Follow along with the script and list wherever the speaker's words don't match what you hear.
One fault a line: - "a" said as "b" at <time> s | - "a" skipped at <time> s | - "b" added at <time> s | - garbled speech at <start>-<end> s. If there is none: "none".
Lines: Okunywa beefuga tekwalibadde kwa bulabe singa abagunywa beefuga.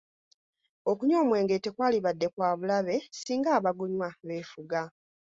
- "beefuga" said as "omwenge" at 1.2 s